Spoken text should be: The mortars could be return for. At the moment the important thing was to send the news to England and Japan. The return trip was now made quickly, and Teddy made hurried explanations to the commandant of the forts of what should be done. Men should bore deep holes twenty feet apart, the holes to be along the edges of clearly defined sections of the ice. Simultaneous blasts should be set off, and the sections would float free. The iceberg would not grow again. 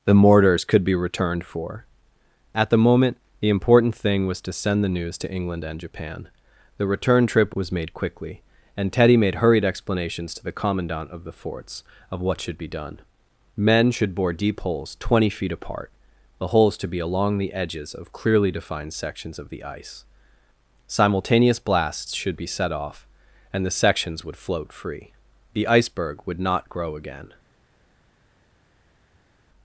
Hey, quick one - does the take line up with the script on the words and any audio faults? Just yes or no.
no